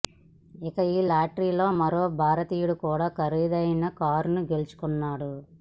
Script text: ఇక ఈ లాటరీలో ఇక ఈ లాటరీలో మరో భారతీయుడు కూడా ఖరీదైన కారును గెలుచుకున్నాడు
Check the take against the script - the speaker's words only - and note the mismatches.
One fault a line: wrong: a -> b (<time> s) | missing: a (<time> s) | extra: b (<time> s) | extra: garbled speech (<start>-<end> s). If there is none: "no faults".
missing: ఇక ఈ లాటరీలో (1.7 s)